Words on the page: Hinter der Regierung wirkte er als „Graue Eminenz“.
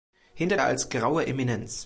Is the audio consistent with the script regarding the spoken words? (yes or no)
no